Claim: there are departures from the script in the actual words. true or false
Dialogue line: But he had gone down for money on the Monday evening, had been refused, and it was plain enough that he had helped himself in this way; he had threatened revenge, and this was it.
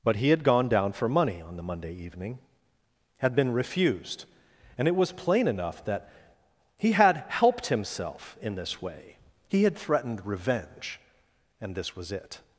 false